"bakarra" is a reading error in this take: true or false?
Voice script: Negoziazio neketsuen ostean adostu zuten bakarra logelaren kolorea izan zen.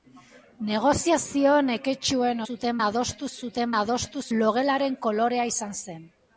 true